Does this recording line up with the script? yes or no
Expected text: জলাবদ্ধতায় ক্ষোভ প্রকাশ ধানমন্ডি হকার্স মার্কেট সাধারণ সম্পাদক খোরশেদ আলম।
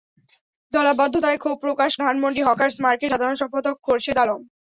yes